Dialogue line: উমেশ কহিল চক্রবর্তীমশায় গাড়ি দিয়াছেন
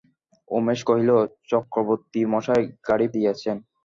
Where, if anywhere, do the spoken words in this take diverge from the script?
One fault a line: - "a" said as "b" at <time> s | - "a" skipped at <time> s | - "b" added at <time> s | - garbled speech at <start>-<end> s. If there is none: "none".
none